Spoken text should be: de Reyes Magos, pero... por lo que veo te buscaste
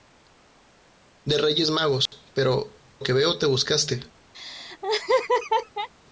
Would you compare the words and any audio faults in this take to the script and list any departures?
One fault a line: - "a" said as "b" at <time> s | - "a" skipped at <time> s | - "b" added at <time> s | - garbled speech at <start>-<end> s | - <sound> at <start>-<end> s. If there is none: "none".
- dropout at 2.1-2.1 s
- "por lo" skipped at 2.8 s
- laugh at 4.3-5.9 s